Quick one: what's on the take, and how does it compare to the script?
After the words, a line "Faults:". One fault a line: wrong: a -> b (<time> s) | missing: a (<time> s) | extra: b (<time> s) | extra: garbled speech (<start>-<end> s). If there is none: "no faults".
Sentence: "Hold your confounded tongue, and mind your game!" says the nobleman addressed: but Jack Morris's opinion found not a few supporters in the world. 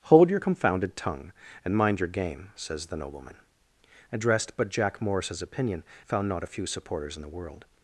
"Hold your confounded tongue, and mind your game!" says the nobleman addressed: but Jack Morris's opinion found not a few supporters in the world.
Faults:
no faults